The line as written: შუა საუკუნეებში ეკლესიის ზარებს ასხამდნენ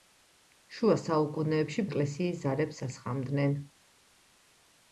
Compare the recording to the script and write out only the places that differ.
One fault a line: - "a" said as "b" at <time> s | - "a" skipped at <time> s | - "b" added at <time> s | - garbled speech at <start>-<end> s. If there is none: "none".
none